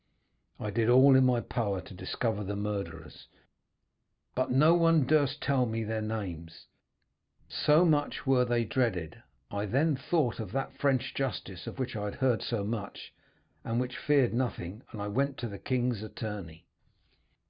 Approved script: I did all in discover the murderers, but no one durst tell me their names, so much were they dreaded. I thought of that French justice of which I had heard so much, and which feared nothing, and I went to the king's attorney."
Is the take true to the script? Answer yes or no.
no